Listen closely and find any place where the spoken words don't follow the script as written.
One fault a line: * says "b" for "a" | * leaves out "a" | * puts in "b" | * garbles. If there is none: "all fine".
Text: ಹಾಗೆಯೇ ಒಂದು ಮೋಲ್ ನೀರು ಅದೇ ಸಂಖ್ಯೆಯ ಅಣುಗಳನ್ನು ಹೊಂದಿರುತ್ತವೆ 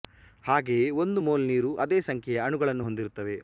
all fine